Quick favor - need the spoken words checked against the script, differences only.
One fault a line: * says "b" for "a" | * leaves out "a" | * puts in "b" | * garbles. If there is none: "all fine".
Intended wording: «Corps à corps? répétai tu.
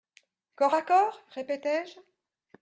* says "je" for "tu"